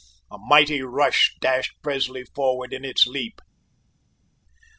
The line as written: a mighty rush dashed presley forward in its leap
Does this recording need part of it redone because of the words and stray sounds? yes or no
no